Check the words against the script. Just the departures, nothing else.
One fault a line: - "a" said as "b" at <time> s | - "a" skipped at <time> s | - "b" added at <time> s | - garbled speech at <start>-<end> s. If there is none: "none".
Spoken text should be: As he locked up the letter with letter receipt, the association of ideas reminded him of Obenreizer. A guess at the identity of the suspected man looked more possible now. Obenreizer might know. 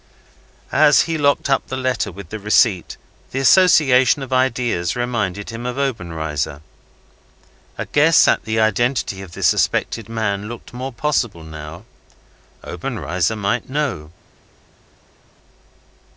- "letter" said as "the" at 2.3 s